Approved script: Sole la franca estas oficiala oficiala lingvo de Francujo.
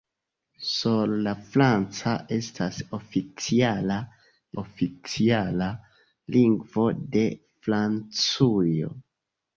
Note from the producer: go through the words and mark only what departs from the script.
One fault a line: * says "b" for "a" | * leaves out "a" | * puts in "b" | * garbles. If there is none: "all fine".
all fine